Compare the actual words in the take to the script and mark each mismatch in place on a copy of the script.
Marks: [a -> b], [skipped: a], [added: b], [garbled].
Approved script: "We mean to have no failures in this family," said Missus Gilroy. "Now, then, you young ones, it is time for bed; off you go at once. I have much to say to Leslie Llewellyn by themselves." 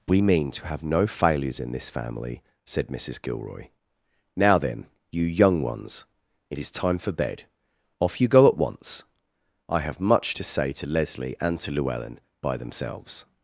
"We mean to have no failures in this family," said Missus Gilroy. "Now, then, you young ones, it is time for bed; off you go at once. I have much to say to Leslie [added: and to] Llewellyn by themselves."